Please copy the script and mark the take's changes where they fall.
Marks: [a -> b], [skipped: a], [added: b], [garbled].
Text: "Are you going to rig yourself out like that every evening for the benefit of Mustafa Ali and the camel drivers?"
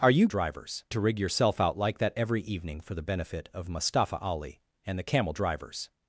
"Are you [going -> drivers] to rig yourself out like that every evening for the benefit of Mustafa Ali and the camel drivers?"